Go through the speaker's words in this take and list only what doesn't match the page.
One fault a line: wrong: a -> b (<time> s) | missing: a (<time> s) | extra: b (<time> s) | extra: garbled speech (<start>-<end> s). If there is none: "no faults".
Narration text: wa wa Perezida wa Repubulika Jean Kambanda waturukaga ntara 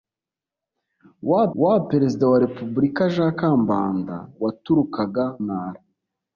no faults